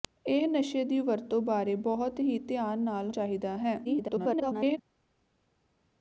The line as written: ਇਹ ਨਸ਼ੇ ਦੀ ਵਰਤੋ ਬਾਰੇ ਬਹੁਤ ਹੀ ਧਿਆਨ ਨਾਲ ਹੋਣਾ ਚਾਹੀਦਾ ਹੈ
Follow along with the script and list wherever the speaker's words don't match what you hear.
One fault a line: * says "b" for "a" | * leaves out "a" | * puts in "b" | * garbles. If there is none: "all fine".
* leaves out "ਹੋਣਾ"
* garbles